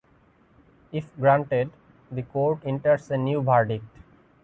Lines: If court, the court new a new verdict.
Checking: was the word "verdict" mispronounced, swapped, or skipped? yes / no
no